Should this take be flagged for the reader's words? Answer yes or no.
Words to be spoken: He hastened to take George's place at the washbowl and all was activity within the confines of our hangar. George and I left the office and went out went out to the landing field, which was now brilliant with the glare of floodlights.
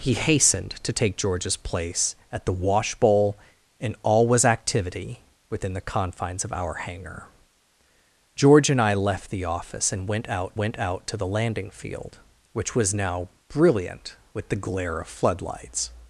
no